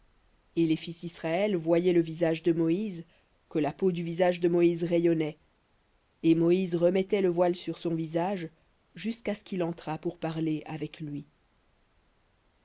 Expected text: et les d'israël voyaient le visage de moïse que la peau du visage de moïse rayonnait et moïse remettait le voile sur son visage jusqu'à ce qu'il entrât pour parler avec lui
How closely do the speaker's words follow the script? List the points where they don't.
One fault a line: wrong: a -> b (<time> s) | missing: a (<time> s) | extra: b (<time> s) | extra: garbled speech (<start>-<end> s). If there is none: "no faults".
extra: fils (0.8 s)